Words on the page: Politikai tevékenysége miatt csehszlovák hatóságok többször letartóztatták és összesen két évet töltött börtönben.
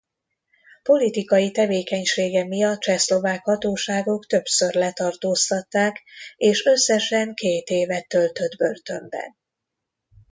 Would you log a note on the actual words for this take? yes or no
no